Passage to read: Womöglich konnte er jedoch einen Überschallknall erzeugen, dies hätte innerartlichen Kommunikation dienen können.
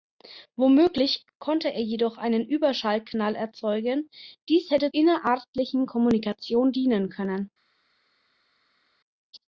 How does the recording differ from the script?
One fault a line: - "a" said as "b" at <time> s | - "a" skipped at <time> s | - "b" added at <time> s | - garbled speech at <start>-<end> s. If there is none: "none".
none